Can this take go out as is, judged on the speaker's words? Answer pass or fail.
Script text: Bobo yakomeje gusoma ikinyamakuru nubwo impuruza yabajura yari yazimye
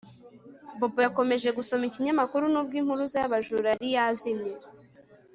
pass